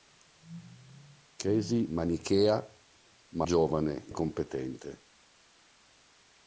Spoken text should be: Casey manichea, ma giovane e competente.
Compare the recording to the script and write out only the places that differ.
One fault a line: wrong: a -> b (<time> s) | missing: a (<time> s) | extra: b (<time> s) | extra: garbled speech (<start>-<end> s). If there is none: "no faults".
no faults